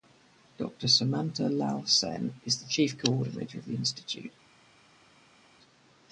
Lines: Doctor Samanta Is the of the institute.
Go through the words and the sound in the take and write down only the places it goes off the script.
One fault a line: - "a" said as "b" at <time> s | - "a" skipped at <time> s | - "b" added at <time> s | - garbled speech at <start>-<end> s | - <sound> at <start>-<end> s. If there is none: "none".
- "Lal Sen" added at 1.5 s
- "chief coordinator" added at 2.7 s